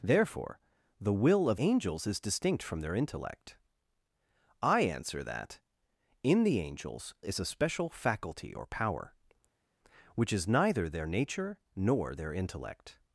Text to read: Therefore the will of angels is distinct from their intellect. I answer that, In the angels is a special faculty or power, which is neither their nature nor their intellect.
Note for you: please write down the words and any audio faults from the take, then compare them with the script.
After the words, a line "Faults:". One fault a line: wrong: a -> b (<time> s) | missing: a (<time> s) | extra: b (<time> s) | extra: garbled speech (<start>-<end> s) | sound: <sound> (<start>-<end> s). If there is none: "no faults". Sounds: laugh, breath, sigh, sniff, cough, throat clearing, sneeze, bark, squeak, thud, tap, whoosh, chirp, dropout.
Therefore the will of angels is distinct from their intellect. I answer that, In the angels is a special faculty or power, which is neither their nature nor their intellect.
Faults:
no faults